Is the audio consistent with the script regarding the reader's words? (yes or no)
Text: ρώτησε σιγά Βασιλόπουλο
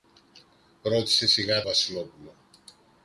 yes